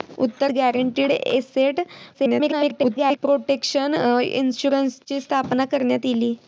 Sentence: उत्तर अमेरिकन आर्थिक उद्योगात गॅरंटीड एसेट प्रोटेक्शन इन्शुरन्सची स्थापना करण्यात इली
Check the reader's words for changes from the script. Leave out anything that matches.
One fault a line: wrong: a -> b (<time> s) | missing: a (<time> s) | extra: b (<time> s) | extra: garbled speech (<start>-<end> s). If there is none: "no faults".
missing: अमेरिकन आर्थिक उद्योगात (0.5 s)
extra: garbled speech (2.1-3.2 s)